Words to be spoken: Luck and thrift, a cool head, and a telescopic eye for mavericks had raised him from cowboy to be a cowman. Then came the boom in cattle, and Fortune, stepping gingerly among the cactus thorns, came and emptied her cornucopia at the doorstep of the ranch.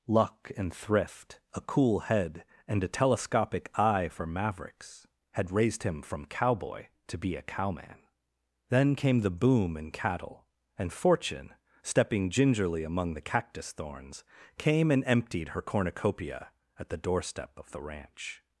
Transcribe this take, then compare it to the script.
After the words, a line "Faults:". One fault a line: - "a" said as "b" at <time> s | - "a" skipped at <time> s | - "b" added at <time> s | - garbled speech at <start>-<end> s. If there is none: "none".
Luck and thrift, a cool head, and a telescopic eye for mavericks had raised him from cowboy to be a cowman. Then came the boom in cattle, and Fortune, stepping gingerly among the cactus thorns, came and emptied her cornucopia at the doorstep of the ranch.
Faults:
none